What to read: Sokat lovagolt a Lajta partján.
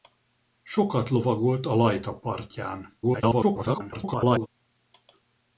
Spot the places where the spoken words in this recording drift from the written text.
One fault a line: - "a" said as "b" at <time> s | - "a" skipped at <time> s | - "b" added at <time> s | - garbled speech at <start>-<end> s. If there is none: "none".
- garbled speech at 3.0-4.5 s